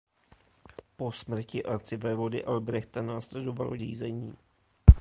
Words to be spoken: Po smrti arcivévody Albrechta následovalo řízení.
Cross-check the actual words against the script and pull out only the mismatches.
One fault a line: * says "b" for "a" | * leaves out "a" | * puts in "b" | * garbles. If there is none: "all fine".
all fine